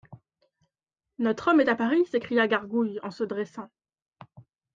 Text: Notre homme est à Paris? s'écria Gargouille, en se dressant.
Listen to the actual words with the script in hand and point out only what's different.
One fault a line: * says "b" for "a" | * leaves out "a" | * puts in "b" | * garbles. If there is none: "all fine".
all fine